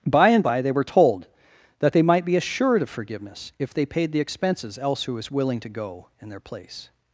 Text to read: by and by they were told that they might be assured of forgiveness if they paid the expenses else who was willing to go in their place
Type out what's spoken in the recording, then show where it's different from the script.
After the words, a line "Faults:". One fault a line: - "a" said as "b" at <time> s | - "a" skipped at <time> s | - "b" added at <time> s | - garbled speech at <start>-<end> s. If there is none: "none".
by and by they were told that they might be assured of forgiveness if they paid the expenses else who was willing to go in their place
Faults:
none